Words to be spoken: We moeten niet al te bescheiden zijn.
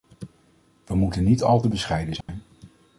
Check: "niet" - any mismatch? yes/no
no